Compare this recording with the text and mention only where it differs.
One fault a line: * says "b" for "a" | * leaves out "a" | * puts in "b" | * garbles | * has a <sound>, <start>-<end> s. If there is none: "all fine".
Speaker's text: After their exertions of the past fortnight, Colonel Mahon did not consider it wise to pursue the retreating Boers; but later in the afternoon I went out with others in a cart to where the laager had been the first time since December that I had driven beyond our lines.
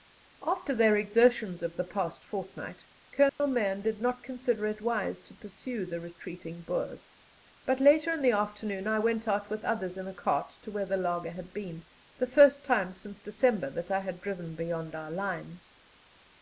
* has a dropout, 3.3-3.4 s